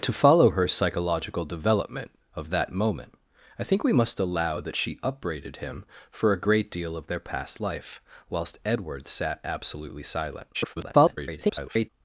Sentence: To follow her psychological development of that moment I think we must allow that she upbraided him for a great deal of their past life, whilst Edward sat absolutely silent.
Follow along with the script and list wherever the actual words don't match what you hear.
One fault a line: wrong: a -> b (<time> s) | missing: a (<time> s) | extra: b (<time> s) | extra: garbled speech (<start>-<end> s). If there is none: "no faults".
extra: garbled speech (10.5-11.9 s)